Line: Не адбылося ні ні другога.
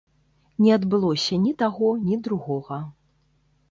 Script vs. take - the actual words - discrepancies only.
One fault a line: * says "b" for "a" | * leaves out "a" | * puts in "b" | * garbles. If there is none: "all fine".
* puts in "таго"